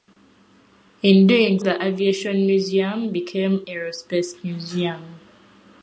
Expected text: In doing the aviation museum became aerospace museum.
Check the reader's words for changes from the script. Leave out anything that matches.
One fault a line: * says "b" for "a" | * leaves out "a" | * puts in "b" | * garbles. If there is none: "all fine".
all fine